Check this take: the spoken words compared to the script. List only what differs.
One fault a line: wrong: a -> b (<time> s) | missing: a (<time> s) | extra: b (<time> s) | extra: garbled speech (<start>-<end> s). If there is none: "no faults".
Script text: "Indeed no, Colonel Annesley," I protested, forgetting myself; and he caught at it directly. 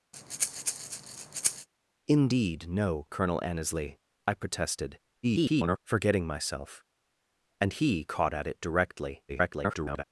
extra: garbled speech (5.2-5.8 s)
extra: garbled speech (9.3-10.0 s)